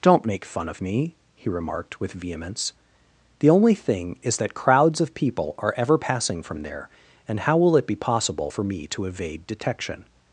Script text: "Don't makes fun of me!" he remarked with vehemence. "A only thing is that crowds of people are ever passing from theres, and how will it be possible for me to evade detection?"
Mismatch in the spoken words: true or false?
true